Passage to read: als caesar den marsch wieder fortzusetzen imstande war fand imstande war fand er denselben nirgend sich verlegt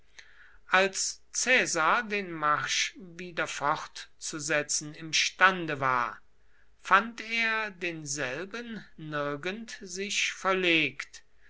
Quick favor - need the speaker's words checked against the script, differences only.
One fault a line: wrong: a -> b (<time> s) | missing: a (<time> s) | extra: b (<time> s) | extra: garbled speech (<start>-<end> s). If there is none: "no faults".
missing: imstande war fand (7.2 s)